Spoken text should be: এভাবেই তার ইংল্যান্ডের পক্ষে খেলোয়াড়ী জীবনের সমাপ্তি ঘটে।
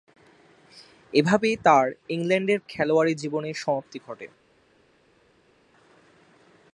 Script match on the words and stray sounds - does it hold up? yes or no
no